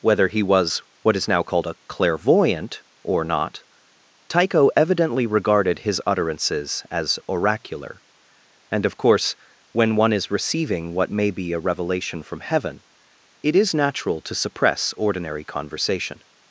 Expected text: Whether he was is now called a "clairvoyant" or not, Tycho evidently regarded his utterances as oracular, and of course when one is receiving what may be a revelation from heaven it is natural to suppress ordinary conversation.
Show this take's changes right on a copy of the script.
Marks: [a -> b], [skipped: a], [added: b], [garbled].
Whether he was [added: what] is now called a "clairvoyant" or not, Tycho evidently regarded his utterances as oracular, and of course when one is receiving what may be a revelation from heaven it is natural to suppress ordinary conversation.